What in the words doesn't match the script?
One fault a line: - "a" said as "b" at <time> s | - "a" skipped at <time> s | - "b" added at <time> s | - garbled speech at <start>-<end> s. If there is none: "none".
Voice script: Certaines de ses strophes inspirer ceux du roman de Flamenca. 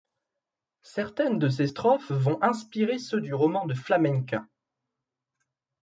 - "vont" added at 2.1 s